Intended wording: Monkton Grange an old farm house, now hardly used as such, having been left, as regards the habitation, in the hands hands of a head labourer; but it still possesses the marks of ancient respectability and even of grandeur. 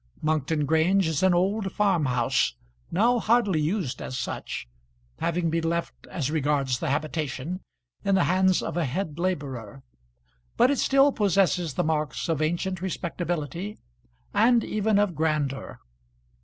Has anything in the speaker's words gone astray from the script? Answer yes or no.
yes